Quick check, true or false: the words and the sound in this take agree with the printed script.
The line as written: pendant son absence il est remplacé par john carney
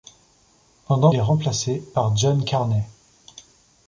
false